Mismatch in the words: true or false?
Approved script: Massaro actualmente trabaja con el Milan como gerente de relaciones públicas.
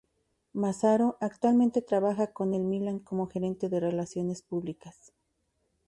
false